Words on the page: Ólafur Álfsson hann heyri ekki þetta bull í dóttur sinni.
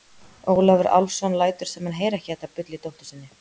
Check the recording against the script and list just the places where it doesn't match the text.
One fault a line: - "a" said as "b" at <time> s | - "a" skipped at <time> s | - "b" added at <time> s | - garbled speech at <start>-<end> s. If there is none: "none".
- "lætur sem" added at 1.4 s